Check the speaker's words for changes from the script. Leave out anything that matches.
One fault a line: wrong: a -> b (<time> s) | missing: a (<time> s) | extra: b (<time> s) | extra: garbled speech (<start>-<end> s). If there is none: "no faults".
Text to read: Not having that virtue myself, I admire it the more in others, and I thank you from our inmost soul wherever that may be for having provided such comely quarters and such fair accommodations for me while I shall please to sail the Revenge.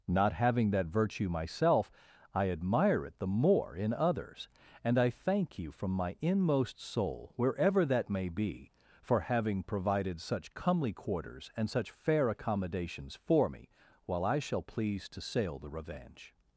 wrong: our -> my (5.9 s)